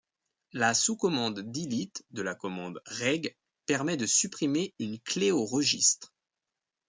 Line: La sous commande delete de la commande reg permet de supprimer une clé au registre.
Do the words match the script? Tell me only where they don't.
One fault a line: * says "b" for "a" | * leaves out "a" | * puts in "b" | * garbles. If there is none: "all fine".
all fine